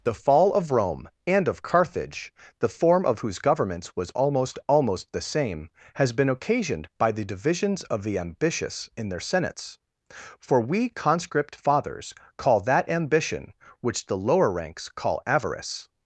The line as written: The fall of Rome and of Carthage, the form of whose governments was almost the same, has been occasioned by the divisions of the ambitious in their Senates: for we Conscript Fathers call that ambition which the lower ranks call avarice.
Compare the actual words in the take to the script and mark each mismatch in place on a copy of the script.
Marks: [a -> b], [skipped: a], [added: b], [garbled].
The fall of Rome and of Carthage, the form of whose governments was almost [added: almost] the same, has been occasioned by the divisions of the ambitious in their Senates: for we Conscript Fathers call that ambition which the lower ranks call avarice.